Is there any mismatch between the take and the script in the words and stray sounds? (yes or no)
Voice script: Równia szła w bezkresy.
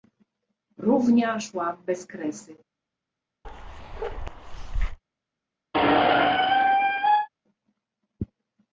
yes